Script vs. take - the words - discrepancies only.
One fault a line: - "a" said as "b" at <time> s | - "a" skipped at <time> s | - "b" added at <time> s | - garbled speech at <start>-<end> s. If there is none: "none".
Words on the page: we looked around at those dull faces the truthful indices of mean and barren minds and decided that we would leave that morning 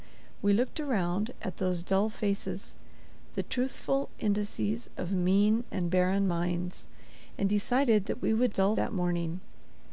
- "leave" said as "dull" at 8.5 s